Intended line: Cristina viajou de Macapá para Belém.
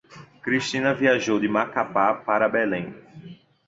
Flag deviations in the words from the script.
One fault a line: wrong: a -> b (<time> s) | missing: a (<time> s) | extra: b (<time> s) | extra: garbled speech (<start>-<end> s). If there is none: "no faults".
no faults